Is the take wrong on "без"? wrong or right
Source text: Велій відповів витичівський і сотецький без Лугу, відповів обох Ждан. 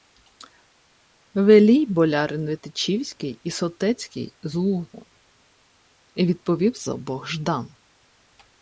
wrong